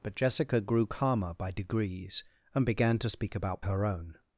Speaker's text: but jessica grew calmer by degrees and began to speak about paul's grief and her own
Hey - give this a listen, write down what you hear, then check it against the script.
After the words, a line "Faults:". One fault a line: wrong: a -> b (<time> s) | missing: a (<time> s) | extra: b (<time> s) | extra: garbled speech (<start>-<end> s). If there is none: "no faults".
but jessica grew calmer by degrees and began to speak about her own
Faults:
missing: paul's grief and (3.7 s)